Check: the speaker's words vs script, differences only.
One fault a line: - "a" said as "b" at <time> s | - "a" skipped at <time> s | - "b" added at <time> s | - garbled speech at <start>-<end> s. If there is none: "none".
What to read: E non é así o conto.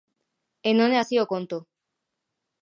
none